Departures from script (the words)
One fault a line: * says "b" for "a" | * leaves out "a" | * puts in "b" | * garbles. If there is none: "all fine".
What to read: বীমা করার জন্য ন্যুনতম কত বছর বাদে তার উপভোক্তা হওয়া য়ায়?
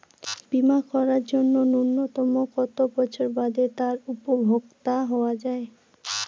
all fine